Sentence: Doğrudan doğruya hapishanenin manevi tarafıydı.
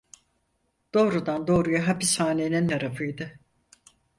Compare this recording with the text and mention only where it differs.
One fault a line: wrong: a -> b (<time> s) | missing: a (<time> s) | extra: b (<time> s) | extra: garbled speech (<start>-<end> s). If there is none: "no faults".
missing: manevi (2.7 s)